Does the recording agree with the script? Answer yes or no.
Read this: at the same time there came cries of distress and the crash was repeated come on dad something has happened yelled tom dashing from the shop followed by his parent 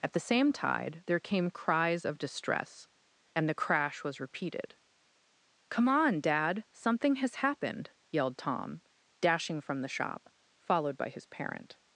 no